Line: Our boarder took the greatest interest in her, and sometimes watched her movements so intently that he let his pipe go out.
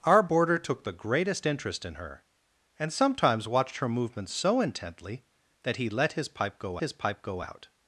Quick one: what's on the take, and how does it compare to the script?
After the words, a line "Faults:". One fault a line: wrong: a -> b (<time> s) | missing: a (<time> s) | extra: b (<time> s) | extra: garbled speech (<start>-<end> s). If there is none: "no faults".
Our boarder took the greatest interest in her, and sometimes watched her movements so intently that he let his pipe go his pipe go out.
Faults:
extra: his pipe go (6.8 s)